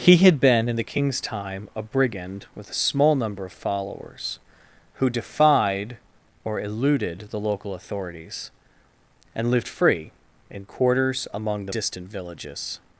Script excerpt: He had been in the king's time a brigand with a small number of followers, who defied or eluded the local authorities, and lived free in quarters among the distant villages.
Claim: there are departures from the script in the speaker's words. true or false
false